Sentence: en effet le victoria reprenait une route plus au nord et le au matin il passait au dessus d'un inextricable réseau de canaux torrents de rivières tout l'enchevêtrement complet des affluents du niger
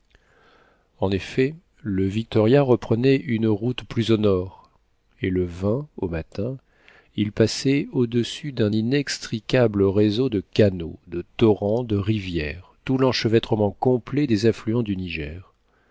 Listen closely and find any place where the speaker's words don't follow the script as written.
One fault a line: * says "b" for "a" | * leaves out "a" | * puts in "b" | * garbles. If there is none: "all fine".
* puts in "de"